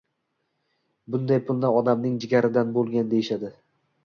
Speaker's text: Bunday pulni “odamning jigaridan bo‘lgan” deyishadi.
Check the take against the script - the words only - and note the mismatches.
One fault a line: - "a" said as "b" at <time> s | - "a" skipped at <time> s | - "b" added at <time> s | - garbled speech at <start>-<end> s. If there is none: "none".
none